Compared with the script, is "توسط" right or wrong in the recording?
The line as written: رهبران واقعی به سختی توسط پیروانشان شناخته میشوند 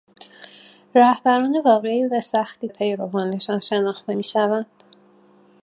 wrong